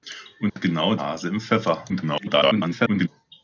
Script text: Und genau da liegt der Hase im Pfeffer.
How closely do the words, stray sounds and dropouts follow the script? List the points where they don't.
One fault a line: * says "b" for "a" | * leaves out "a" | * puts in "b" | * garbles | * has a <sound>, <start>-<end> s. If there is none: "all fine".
* has a dropout, 0.5-0.6 s
* leaves out "da liegt der"
* garbles